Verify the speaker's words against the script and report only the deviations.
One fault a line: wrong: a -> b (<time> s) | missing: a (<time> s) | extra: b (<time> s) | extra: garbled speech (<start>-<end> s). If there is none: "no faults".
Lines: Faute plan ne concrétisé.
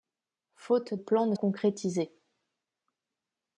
no faults